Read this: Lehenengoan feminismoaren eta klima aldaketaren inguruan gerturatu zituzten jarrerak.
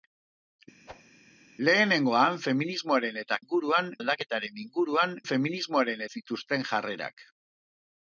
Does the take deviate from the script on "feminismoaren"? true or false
false